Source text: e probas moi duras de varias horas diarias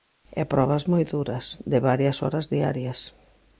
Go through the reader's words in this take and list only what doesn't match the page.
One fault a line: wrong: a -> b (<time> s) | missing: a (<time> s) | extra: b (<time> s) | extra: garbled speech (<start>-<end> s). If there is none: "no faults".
no faults